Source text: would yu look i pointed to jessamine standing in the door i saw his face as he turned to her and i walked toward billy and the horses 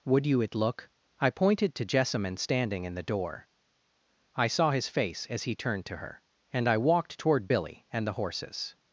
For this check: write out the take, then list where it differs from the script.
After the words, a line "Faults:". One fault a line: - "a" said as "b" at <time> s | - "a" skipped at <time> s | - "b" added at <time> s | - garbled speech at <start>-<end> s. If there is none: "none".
would you it look i pointed to jessamine standing in the door i saw his face as he turned to her and i walked toward billy and the horses
Faults:
- "yu" said as "you it" at 0.2 s